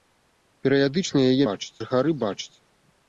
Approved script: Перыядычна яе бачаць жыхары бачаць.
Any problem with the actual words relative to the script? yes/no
no